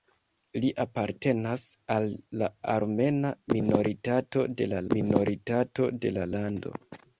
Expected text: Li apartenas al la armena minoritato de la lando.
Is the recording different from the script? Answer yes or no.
yes